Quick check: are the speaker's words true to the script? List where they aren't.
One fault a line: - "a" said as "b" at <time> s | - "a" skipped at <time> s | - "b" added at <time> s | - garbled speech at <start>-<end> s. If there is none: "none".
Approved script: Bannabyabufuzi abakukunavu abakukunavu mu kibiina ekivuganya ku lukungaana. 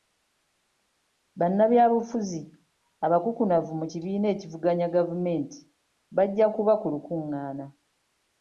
- "abakukunavu" skipped at 3.7 s
- "gavumenti bajja kuba" added at 4.9 s